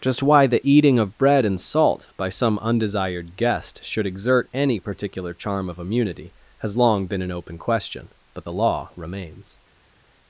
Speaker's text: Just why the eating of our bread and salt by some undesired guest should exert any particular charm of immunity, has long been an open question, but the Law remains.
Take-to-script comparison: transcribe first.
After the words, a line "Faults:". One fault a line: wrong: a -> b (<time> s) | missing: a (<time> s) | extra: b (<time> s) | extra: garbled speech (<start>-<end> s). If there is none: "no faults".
Just why the eating of bread and salt by some undesired guest should exert any particular charm of immunity, has long been an open question, but the Law remains.
Faults:
missing: our (1.2 s)